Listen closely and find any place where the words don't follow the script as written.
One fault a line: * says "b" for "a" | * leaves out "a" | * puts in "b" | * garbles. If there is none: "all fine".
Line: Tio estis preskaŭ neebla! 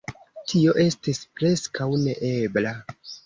all fine